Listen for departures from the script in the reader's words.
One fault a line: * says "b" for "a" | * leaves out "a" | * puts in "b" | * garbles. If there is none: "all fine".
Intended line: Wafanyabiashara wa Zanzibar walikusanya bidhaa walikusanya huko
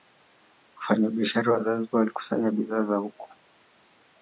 * says "zao" for "walikusanya"